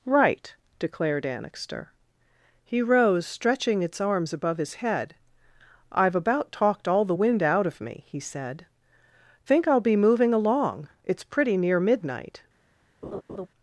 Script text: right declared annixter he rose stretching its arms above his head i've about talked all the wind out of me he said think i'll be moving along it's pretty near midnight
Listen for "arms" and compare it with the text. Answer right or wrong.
right